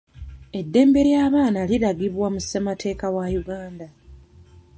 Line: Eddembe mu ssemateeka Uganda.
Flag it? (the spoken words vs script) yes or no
yes